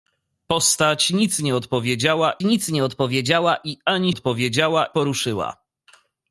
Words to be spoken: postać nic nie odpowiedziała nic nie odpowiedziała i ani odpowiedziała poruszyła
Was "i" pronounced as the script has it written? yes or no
yes